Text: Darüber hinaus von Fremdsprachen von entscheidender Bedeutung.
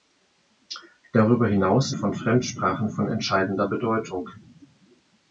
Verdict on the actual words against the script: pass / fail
pass